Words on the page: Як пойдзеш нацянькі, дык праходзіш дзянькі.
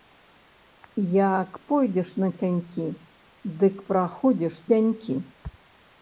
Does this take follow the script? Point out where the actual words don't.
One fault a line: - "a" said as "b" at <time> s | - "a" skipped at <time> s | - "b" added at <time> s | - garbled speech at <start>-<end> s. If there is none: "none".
none